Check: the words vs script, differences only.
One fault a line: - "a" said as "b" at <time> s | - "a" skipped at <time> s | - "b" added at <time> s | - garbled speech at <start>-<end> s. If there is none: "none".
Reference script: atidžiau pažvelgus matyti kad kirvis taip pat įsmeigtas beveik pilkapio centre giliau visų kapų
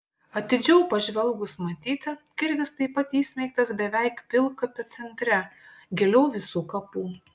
- "kad" skipped at 2.1 s